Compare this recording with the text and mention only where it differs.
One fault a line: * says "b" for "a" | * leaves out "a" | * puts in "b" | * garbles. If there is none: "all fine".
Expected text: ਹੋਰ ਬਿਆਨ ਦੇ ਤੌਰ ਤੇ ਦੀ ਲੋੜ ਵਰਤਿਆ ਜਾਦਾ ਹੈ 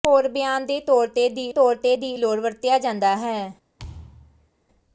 * puts in "ਤੌਰ ਤੇ ਦੀ"